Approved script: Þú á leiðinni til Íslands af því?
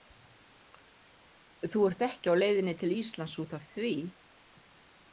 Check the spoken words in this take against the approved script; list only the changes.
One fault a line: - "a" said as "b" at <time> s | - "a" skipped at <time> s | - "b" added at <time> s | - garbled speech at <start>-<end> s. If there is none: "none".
- "ert ekki" added at 1.9 s
- "út" added at 3.4 s